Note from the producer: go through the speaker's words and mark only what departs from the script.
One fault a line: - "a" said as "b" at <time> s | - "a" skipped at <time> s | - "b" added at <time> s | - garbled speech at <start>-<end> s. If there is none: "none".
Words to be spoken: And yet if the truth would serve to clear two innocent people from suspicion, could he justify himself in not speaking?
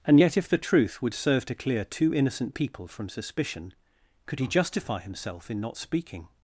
none